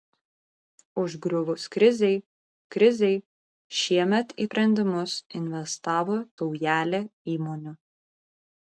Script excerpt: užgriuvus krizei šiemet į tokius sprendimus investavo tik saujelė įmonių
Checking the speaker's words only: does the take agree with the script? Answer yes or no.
no